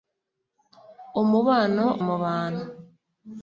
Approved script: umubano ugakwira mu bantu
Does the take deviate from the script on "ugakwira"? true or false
true